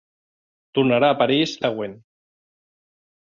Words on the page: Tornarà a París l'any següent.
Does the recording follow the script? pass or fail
fail